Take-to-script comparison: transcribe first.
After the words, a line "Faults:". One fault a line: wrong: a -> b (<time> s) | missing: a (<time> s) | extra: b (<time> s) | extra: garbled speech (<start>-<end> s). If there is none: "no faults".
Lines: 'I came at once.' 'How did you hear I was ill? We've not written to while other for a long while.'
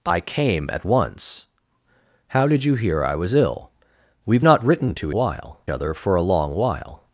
'I came at once.' 'How did you hear I was ill? We've not written to while other for a long while.'
Faults:
no faults